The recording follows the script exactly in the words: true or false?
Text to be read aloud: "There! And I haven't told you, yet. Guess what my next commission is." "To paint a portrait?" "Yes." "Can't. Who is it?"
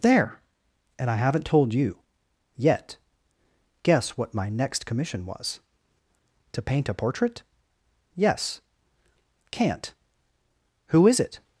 false